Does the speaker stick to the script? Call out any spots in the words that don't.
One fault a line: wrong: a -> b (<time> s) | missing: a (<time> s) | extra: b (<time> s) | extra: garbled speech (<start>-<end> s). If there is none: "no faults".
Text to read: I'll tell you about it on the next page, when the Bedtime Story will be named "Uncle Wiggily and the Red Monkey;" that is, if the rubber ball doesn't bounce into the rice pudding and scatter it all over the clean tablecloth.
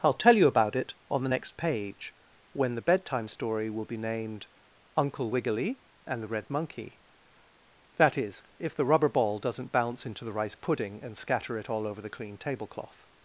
no faults